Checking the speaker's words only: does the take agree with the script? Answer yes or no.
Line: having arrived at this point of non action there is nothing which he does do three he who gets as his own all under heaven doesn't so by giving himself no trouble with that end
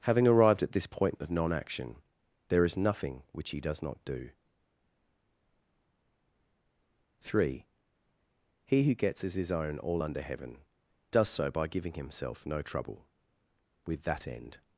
no